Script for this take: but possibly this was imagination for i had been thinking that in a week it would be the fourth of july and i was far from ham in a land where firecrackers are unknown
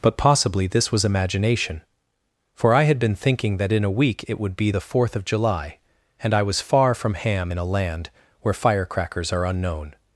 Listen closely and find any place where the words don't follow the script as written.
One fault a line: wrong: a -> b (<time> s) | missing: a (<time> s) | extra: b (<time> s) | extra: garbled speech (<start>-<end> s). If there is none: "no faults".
no faults